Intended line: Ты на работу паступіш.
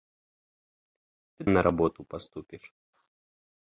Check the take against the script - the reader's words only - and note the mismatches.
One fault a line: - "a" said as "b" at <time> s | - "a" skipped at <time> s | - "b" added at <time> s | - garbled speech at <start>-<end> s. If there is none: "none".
none